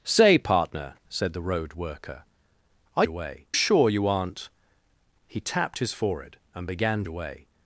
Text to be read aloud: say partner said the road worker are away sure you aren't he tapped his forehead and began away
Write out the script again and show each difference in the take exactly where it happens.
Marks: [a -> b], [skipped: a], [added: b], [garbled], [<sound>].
say partner said the road worker are away sure you aren't he tapped his forehead and began away